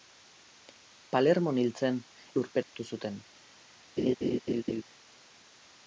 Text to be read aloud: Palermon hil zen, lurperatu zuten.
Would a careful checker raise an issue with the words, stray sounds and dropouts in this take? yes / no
yes